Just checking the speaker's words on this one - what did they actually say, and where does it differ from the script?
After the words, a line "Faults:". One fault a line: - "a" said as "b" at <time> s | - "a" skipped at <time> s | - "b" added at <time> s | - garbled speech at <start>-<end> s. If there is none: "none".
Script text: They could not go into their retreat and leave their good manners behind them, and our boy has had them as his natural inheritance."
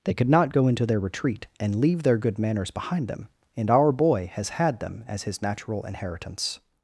They could not go into their retreat and leave their good manners behind them, and our boy has had them as his natural inheritance."
Faults:
none